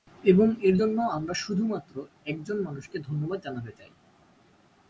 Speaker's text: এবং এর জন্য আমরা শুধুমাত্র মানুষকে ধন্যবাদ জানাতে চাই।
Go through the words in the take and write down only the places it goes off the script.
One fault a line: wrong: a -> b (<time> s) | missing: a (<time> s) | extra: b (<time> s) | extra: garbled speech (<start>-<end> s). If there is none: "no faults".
extra: একজন (2.2 s)